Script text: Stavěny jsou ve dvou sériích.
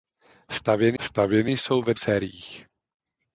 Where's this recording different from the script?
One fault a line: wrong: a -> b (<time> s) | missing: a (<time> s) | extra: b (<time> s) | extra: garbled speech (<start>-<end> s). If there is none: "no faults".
extra: stavěny (1.0 s)
missing: dvou (1.9 s)